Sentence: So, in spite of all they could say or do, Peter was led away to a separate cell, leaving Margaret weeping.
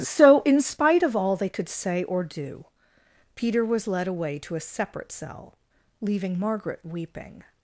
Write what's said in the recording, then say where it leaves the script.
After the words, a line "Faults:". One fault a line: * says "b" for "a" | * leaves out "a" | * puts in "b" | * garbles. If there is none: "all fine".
So, in spite of all they could say or do, Peter was led away to a separate cell, leaving Margaret weeping.
Faults:
all fine